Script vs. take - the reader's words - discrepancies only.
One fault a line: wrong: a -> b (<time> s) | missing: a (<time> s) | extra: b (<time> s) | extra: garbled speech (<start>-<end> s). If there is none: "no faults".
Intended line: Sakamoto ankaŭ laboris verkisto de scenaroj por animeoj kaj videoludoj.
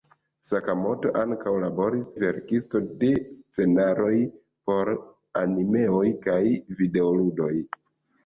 no faults